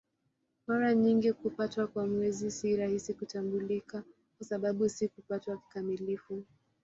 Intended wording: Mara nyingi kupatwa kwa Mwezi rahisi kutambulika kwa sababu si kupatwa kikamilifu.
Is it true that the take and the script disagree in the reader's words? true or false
true